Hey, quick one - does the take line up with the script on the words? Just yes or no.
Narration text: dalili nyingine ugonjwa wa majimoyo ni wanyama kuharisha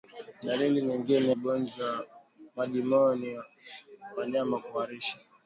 yes